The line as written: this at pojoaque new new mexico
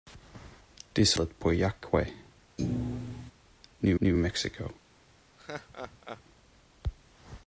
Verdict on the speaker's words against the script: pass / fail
pass